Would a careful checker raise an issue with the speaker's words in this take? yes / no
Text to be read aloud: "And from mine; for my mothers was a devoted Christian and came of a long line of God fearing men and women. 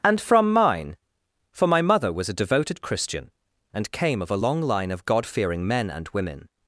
yes